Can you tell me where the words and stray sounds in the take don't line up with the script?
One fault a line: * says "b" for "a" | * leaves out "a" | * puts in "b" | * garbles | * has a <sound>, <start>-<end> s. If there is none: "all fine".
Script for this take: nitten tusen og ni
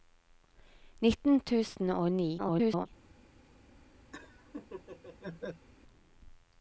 * garbles
* has a laugh, 4.1-5.7 s